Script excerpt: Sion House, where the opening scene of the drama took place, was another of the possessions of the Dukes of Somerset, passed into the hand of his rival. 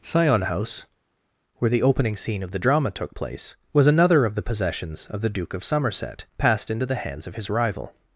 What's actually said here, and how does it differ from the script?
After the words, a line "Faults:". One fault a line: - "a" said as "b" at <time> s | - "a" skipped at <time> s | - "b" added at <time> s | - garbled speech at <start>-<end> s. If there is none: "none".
Sion House, where the opening scene of the drama took place, was another of the possessions of the Duke of Somerset, passed into the hands of his rival.
Faults:
- "Dukes" said as "Duke" at 5.3 s
- "hand" said as "hands" at 6.9 s